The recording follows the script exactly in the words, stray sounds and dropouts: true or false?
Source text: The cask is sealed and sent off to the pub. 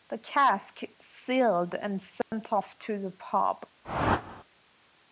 false